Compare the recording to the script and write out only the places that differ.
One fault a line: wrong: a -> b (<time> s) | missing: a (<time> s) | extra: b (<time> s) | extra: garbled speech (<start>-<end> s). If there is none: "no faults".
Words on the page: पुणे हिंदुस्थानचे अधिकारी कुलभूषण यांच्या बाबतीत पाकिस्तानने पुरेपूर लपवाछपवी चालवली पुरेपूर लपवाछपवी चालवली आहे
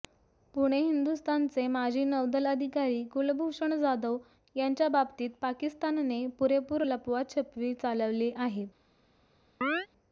extra: माजी नौदल (1.7 s)
extra: जाधव (3.8 s)
missing: पुरेपूर लपवाछपवी चालवली (8.3 s)